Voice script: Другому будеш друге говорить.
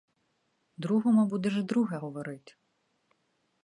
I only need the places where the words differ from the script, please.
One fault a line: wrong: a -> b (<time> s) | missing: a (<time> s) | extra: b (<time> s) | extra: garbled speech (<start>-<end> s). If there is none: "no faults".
no faults